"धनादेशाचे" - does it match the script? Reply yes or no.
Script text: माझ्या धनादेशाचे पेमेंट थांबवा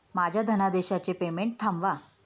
yes